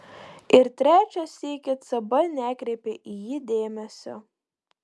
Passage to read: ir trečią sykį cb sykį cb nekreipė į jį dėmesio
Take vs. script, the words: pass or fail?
fail